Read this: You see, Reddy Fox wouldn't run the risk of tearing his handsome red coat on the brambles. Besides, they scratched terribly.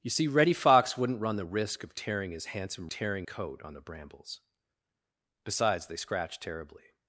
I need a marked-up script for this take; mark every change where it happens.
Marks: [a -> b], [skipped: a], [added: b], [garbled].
You see, Reddy Fox wouldn't run the risk of tearing his handsome [red -> tearing] coat on the brambles. Besides, they scratched terribly.